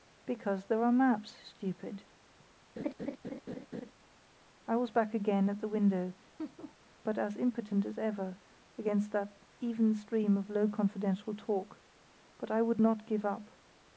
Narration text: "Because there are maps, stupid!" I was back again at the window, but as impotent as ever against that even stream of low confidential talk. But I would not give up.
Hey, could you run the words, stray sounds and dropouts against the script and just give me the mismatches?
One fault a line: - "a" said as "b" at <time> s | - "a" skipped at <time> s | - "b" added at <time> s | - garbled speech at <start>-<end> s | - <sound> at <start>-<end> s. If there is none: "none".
- laugh at 2.8-3.9 s
- laugh at 6.4-6.8 s